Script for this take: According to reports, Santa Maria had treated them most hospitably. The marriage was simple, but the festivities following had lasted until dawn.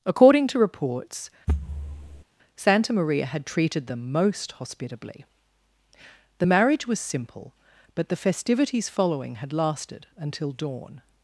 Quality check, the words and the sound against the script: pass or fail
fail